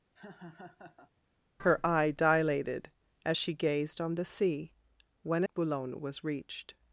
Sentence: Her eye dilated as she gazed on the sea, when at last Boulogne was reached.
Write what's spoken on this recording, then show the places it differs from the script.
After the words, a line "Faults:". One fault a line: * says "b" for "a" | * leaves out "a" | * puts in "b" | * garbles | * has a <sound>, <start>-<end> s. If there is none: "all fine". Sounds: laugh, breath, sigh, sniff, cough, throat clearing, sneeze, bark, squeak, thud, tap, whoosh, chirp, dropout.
Her eye dilated as she gazed on the sea, when Boulogne was reached.
Faults:
* has a laugh, 0.2-1.1 s
* leaves out "at last"